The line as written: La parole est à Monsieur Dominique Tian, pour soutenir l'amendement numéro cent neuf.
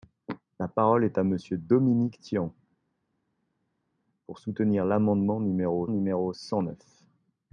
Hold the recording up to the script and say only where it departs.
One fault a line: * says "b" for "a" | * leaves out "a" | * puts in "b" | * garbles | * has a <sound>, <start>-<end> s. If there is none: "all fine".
* puts in "numéro"